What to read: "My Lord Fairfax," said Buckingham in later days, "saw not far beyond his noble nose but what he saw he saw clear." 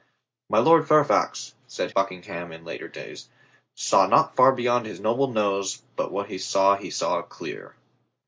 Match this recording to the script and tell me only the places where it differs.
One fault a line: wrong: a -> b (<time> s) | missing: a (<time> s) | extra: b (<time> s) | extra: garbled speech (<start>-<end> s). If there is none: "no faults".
no faults